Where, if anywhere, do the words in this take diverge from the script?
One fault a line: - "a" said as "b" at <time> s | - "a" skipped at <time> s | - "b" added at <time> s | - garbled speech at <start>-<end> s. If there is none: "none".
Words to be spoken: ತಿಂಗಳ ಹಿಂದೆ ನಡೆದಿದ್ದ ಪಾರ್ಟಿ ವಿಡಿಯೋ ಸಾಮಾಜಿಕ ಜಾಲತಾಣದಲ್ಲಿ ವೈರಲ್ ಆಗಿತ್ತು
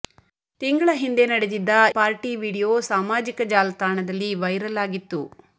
none